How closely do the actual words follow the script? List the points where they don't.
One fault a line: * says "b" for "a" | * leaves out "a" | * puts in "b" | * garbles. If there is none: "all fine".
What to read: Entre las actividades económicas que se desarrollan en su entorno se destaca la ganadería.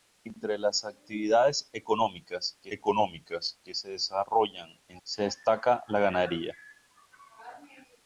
* puts in "económicas que"
* leaves out "su entorno"